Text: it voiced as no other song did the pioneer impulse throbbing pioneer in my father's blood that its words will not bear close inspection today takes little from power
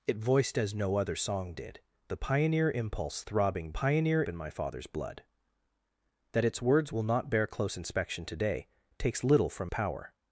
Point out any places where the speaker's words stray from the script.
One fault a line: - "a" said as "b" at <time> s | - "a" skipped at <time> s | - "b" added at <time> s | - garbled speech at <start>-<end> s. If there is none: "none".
none